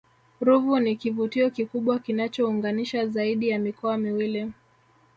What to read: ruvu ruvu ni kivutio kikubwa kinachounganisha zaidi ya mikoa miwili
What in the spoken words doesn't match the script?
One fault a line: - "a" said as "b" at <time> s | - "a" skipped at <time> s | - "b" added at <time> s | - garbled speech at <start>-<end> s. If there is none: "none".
- "ruvu" skipped at 0.8 s